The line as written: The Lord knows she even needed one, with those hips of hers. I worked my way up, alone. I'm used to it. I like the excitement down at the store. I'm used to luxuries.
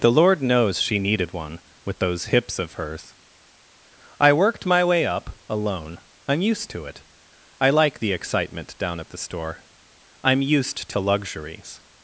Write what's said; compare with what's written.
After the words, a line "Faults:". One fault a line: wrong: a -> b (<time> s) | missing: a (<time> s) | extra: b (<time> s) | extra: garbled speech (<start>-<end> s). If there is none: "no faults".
The Lord knows she needed one, with those hips of hers. I worked my way up, alone. I'm used to it. I like the excitement down at the store. I'm used to luxuries.
Faults:
missing: even (1.0 s)